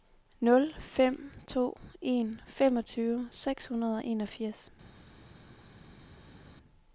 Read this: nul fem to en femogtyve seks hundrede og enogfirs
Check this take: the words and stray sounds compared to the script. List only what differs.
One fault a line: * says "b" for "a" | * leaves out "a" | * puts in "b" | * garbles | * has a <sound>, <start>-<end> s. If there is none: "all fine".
all fine